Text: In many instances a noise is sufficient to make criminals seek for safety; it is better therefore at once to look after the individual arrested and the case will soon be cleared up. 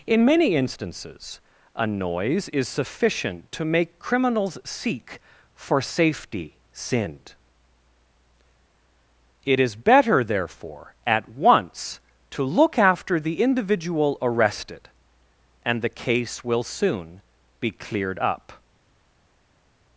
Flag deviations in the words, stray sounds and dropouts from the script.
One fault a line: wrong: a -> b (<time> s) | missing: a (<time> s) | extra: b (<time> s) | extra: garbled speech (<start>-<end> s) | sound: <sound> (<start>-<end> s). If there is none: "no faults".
extra: sinned (6.7 s)